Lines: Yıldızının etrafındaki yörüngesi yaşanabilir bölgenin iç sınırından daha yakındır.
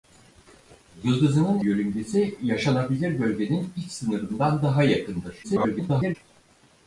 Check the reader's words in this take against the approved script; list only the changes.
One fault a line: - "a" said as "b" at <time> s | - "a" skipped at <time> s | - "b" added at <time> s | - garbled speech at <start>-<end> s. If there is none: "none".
- "etrafındaki" skipped at 1.6 s
- garbled speech at 5.4-6.2 s